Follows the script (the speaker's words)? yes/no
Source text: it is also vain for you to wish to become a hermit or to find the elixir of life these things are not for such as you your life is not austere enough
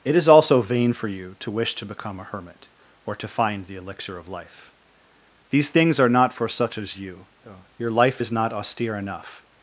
yes